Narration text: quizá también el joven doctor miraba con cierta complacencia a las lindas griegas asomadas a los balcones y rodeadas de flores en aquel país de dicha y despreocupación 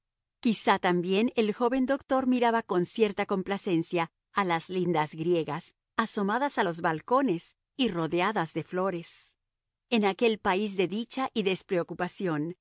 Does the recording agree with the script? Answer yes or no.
yes